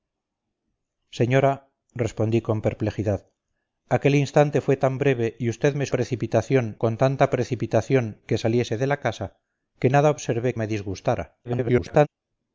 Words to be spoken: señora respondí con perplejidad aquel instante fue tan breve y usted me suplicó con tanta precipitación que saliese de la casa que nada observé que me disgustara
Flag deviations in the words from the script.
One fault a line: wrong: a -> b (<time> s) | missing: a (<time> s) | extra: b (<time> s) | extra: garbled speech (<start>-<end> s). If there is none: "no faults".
wrong: suplicó -> precipitación (5.9 s)
missing: que (10.5 s)
extra: garbled speech (11.4-12.1 s)